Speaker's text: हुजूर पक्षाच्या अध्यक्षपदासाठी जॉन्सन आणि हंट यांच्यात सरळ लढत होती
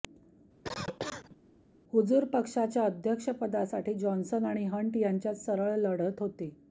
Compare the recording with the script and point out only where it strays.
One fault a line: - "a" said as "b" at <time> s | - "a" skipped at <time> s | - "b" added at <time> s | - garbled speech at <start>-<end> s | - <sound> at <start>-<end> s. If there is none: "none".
- cough at 0.6-1.4 s